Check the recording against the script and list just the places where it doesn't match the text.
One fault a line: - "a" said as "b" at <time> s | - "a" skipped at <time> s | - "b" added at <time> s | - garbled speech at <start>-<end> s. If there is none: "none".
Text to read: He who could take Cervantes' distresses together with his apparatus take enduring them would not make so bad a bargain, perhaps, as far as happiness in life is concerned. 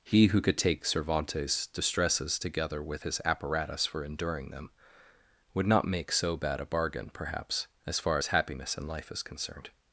- "take" said as "for" at 3.9 s